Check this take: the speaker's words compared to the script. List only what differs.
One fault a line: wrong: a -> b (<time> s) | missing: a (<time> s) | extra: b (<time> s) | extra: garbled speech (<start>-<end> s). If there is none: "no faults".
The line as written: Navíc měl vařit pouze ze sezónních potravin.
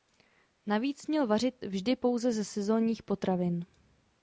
extra: vždy (1.6 s)